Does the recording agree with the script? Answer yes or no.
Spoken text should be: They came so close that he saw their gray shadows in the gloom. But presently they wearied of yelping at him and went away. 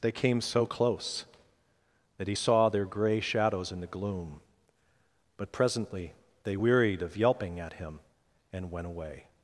yes